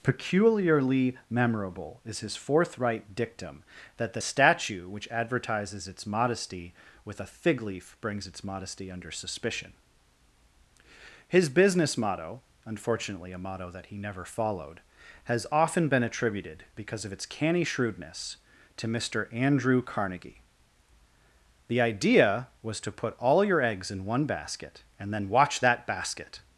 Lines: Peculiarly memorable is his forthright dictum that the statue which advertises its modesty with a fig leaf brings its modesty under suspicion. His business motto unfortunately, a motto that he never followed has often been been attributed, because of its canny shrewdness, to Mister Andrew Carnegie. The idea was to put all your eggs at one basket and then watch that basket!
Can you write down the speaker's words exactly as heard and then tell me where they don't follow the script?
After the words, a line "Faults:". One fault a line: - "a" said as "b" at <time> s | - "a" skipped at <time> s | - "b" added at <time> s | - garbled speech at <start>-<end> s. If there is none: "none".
Peculiarly memorable is his forthright dictum that the statue which advertises its modesty with a fig leaf brings its modesty under suspicion. His business motto unfortunately, a motto that he never followed has often been attributed, because of its canny shrewdness, to Mister Andrew Carnegie. The idea was to put all your eggs in one basket and then watch that basket!
Faults:
- "been" skipped at 16.0 s
- "at" said as "in" at 23.9 s